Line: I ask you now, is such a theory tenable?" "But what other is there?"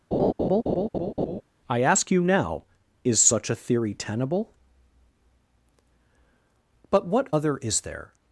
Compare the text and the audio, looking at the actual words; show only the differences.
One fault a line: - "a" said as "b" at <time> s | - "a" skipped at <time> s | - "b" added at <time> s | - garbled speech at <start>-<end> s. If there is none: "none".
none